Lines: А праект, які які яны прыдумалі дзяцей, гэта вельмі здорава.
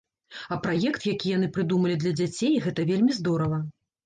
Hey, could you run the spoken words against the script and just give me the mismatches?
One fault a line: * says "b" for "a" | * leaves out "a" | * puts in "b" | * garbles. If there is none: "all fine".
* leaves out "які"
* puts in "для"